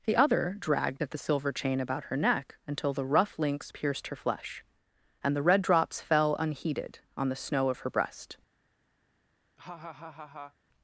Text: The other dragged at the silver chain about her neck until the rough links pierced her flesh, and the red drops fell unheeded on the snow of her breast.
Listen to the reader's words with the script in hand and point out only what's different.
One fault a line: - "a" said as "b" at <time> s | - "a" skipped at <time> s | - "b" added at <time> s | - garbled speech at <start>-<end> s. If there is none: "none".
none